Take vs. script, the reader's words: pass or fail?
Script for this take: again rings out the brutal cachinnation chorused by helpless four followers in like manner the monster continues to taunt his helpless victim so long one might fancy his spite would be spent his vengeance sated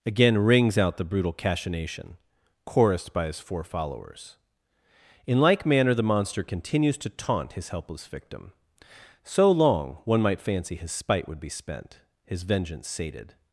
fail